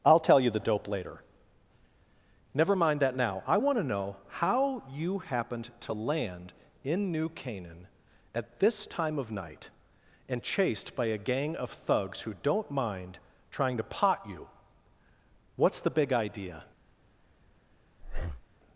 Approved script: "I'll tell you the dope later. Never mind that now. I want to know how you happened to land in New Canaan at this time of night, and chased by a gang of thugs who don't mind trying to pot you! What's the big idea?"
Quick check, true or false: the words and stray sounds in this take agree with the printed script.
false